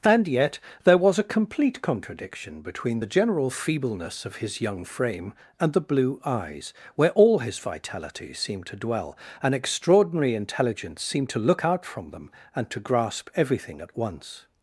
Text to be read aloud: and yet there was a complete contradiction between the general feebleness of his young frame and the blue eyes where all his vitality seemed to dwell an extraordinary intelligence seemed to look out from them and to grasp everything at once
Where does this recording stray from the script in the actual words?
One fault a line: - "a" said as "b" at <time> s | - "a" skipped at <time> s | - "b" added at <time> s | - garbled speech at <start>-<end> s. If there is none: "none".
none